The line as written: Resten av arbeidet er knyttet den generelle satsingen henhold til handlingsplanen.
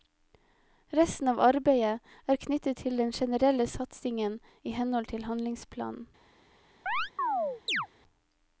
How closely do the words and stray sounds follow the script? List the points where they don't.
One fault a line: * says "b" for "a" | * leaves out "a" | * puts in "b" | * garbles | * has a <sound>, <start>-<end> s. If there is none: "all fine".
* puts in "til"
* puts in "i"
* has a chirp, 6.9-7.9 s